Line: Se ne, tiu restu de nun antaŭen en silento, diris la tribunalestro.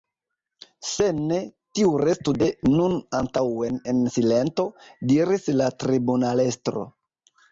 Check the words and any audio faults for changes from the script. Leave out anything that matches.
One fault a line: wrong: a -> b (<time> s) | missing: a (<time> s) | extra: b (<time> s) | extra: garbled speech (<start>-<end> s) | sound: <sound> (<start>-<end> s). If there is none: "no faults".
no faults